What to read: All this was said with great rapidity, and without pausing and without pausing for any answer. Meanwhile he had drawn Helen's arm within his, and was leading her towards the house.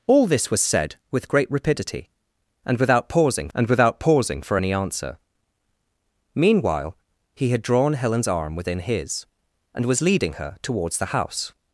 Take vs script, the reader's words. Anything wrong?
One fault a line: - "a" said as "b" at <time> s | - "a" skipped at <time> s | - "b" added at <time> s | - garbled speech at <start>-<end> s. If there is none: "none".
none